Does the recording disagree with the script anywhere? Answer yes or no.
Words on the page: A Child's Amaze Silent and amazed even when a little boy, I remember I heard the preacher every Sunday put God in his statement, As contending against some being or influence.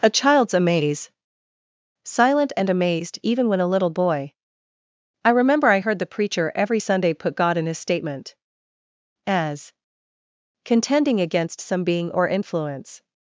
no